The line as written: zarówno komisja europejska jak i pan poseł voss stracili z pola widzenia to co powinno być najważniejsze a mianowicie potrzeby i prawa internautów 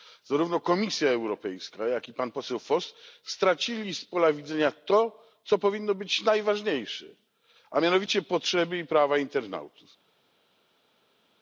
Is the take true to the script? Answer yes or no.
yes